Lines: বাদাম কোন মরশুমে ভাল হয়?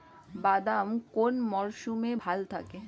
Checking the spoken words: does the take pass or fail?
pass